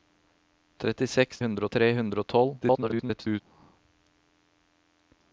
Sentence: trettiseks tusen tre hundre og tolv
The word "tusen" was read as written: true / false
false